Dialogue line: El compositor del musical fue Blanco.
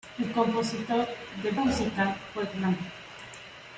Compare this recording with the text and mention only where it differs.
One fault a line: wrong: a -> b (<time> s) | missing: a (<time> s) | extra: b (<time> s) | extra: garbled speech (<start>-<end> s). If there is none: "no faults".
no faults